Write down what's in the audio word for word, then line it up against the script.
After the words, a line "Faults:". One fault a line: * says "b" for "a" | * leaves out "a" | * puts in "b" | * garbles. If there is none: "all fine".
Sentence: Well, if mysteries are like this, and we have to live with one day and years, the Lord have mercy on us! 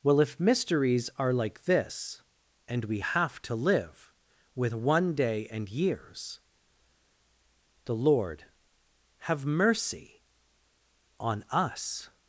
Well, if mysteries are like this, and we have to live with one day and years, the Lord have mercy on us!
Faults:
all fine